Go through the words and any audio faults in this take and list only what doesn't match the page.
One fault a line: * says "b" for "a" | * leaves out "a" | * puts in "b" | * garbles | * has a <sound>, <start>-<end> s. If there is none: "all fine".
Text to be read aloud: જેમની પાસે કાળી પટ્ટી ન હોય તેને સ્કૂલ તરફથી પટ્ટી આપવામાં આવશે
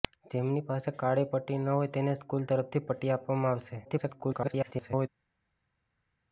* garbles